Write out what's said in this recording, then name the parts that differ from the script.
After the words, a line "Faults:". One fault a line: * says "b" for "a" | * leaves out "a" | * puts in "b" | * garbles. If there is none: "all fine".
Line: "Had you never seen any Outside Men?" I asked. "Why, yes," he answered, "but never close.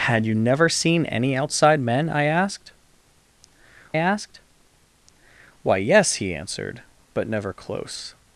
"Had you never seen any Outside Men?" I asked asked. "Why, yes," he answered, "but never close.
Faults:
* puts in "asked"